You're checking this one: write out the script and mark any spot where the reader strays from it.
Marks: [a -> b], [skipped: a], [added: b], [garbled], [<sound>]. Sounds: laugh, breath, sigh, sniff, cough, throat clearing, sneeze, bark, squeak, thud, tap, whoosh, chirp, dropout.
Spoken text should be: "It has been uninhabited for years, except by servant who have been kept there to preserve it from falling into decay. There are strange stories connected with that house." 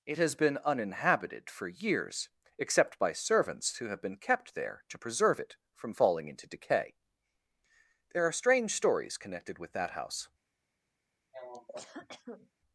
"It has been uninhabited for years, except by [servant -> servants] who have been kept there to preserve it from falling into decay. There are strange stories connected with that house." [cough]